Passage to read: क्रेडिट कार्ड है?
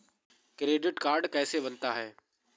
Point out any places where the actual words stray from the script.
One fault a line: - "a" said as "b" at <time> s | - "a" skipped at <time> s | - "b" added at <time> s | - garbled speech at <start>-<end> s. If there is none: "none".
- "कैसे बनता" added at 1.3 s